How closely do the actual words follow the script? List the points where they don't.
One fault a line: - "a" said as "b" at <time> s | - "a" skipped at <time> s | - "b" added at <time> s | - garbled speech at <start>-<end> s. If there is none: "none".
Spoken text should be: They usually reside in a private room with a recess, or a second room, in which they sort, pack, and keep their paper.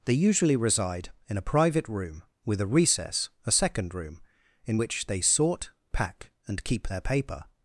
- "or" skipped at 3.3 s